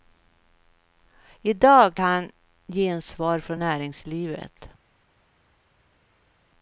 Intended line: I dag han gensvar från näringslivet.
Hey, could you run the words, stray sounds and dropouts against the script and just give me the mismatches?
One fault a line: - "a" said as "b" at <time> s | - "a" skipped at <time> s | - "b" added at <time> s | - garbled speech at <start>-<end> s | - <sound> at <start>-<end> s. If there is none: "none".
none